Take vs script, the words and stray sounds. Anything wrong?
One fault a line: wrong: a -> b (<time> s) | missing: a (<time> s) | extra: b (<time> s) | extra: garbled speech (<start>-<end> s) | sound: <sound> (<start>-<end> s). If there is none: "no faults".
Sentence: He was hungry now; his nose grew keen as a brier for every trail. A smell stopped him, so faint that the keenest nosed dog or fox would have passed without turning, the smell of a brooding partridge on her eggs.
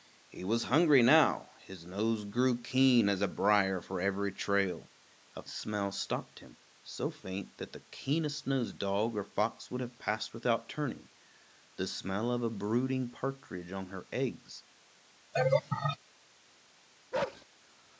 sound: laugh (15.3-16.0 s)
sound: bark (17.1-17.5 s)